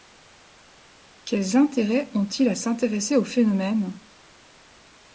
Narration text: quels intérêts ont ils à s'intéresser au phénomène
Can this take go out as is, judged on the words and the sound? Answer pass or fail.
pass